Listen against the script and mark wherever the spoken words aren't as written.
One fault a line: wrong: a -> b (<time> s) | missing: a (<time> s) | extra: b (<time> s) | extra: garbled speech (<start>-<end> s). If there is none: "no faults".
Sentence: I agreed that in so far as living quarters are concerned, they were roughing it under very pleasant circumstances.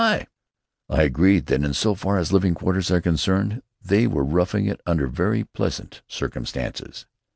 no faults